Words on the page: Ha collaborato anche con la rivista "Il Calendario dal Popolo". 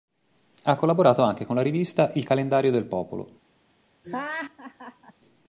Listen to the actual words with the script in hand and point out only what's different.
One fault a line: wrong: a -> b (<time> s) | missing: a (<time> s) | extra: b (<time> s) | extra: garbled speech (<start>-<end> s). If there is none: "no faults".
wrong: dal -> del (2.7 s)